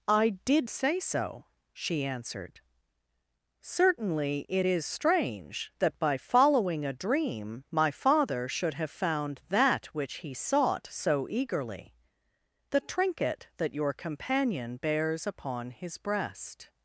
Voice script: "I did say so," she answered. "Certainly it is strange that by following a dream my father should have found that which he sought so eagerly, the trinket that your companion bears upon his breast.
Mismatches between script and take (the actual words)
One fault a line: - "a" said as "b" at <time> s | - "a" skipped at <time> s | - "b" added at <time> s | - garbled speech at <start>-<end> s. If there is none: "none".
none